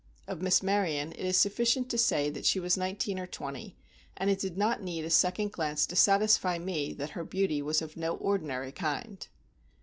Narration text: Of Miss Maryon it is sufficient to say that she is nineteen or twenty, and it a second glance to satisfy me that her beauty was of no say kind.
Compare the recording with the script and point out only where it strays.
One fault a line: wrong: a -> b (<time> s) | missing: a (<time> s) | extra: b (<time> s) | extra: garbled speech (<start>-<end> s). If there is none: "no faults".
wrong: is -> was (2.6 s)
extra: did not need (4.4 s)
wrong: say -> ordinary (8.2 s)